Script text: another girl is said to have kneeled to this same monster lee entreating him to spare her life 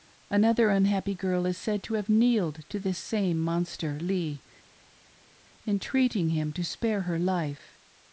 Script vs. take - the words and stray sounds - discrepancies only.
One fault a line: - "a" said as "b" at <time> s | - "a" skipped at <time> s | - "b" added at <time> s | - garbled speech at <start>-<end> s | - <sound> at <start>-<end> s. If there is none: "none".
- "unhappy" added at 0.7 s